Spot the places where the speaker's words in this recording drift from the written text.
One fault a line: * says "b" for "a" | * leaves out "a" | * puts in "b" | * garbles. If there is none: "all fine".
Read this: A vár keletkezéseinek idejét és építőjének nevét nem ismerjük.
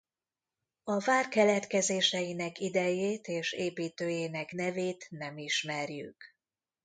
all fine